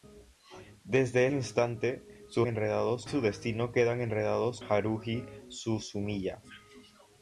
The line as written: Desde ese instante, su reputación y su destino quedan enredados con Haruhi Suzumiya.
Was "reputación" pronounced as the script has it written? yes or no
no